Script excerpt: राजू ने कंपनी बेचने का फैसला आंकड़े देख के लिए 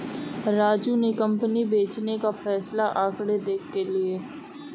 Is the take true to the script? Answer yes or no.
yes